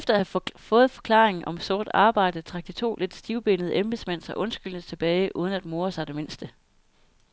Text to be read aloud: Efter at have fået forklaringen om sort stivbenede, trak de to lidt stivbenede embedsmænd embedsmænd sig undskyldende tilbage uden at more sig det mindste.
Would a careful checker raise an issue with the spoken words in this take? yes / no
yes